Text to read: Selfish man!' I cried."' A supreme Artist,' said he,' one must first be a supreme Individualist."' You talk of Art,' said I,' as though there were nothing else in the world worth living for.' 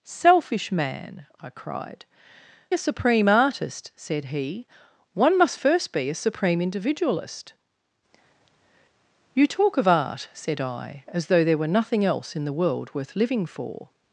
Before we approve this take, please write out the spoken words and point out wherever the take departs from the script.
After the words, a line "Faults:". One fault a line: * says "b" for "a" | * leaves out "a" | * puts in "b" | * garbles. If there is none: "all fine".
Selfish man!' I cried."' A supreme Artist,' said he,' one must first be a supreme Individualist."' You talk of Art,' said I,' as though there were nothing else in the world worth living for.'
Faults:
all fine